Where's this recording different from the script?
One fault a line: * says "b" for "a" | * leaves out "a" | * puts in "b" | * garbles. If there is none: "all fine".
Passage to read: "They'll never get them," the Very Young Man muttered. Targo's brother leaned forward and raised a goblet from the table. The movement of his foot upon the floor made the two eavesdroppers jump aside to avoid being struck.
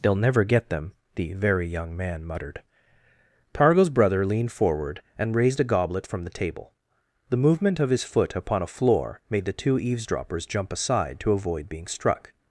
* says "a" for "the"